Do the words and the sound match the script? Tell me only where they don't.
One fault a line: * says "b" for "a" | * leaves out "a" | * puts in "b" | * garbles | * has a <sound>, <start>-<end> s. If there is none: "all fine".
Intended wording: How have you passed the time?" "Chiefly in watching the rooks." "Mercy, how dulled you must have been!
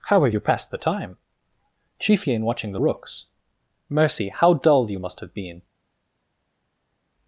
* says "dull" for "dulled"